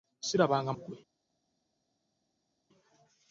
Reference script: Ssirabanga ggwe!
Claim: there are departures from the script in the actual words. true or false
false